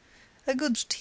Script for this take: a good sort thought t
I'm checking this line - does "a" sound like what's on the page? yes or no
yes